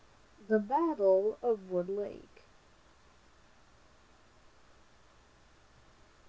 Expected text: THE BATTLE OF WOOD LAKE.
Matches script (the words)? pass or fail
pass